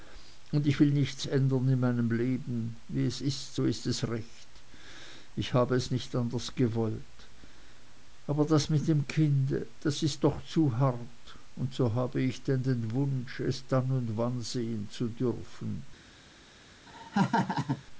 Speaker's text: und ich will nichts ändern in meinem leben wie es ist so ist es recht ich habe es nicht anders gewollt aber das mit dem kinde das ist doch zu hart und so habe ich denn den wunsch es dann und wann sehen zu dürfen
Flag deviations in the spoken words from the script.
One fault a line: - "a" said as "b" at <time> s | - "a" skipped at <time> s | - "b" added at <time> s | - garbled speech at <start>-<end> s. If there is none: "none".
none